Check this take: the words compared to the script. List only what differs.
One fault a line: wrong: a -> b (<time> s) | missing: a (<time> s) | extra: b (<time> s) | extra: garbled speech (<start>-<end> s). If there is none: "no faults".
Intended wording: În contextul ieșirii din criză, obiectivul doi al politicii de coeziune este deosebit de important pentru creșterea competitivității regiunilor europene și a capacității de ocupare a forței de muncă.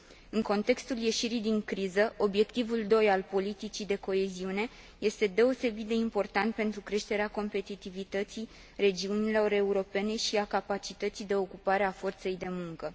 no faults